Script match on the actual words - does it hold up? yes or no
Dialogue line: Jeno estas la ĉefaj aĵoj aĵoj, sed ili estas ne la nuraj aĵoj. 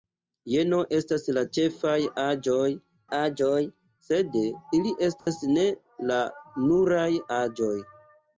yes